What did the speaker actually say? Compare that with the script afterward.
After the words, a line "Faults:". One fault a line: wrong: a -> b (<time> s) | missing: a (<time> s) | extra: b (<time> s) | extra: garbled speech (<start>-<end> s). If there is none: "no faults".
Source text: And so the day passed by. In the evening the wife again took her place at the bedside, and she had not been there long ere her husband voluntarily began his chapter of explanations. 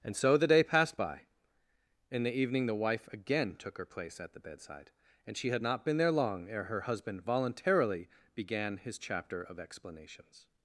And so the day passed by. In the evening the wife again took her place at the bedside, and she had not been there long ere her husband voluntarily began his chapter of explanations.
Faults:
no faults